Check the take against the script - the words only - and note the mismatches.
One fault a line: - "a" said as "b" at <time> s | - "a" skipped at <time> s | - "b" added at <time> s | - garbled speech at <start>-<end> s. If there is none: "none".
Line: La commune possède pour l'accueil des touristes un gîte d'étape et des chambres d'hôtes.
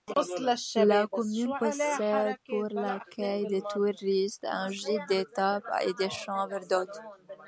none